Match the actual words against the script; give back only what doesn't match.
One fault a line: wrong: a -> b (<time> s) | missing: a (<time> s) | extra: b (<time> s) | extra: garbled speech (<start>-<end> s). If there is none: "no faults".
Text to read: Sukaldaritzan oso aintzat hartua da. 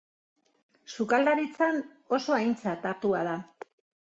no faults